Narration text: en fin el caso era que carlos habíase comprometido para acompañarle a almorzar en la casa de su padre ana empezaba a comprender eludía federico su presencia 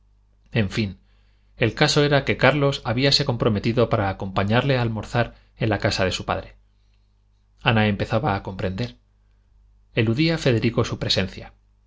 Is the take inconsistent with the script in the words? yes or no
no